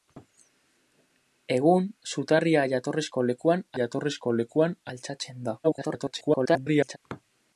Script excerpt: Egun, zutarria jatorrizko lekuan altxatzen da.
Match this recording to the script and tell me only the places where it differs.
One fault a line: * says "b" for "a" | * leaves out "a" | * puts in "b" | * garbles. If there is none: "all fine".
* puts in "jatorrizko lekuan"
* garbles